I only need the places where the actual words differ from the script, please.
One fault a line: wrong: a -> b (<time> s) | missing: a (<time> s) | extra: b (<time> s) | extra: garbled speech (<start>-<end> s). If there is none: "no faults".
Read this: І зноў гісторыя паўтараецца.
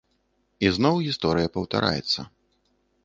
no faults